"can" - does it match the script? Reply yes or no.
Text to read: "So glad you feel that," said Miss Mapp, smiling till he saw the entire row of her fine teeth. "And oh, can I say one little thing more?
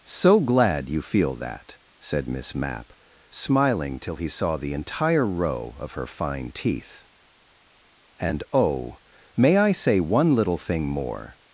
no